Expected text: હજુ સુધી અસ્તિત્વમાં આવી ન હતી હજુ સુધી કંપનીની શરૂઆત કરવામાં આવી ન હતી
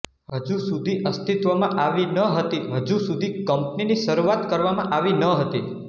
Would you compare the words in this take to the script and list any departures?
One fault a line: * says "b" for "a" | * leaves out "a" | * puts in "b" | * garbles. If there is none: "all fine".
all fine